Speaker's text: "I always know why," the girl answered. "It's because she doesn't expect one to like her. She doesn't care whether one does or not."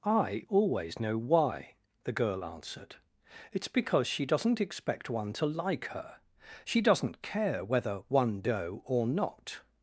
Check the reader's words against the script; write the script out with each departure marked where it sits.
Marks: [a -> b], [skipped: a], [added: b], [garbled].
"I always know why," the girl answered. "It's because she doesn't expect one to like her. She doesn't care whether one [does -> doe] or not."